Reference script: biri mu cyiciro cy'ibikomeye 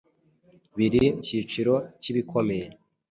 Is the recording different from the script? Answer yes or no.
yes